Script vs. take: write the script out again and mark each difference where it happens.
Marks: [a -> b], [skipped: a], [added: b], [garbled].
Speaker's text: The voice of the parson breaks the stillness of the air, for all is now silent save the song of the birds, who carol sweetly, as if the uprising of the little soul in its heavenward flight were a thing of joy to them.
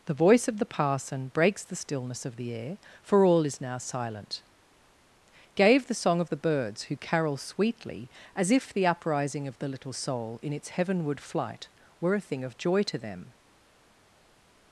The voice of the parson breaks the stillness of the air, for all is now silent [save -> gave] the song of the birds, who carol sweetly, as if the uprising of the little soul in its heavenward flight were a thing of joy to them.